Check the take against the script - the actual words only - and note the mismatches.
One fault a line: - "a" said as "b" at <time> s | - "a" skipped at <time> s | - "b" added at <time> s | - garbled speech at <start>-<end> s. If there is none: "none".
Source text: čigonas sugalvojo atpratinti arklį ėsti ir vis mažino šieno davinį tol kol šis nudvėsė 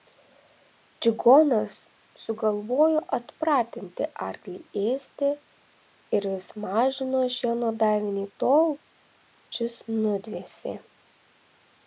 - "kol" skipped at 8.7 s